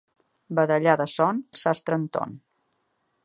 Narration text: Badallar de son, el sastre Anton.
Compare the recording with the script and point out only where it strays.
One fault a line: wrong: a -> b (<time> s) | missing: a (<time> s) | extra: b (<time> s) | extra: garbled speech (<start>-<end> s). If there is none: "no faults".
no faults